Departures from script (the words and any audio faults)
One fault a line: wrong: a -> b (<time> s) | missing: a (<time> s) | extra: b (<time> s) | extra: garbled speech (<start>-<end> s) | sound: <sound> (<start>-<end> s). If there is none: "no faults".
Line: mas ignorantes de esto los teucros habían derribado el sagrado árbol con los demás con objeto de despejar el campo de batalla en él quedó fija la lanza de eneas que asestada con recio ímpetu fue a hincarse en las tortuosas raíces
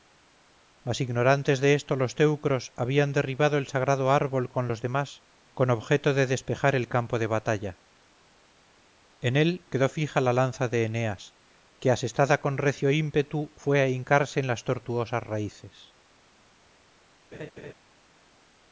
sound: laugh (17.3-17.7 s)